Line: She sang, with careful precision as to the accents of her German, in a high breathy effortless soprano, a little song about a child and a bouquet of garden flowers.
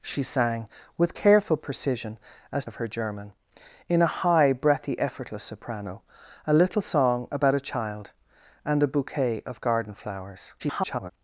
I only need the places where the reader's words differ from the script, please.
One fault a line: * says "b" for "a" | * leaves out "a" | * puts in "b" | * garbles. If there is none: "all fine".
* leaves out "to the accents"
* garbles